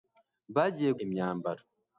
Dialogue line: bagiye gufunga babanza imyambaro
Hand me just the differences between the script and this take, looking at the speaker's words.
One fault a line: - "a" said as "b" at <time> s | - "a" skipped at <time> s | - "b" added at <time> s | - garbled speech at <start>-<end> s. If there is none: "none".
- "gufunga babanza" skipped at 0.9 s